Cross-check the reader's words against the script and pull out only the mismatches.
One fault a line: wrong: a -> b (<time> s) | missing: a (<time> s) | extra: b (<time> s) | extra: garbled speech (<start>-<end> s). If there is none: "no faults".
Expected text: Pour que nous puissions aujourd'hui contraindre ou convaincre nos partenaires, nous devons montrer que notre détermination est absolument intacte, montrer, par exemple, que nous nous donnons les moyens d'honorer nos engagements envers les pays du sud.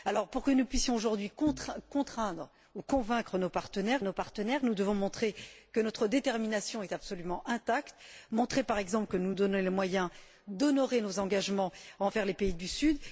extra: nos partenaires (4.0 s)